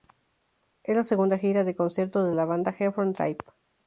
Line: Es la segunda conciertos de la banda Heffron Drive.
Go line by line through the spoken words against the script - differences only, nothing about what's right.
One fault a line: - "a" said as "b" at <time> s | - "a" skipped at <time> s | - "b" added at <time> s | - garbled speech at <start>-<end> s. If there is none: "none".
- "gira de" added at 1.4 s